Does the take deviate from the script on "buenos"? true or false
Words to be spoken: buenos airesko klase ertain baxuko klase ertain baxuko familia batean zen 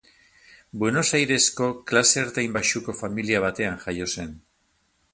false